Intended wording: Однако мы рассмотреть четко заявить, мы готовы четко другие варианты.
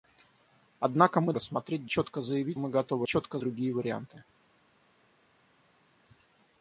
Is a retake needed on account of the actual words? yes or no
no